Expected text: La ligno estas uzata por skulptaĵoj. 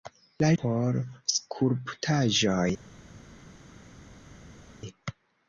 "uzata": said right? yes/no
no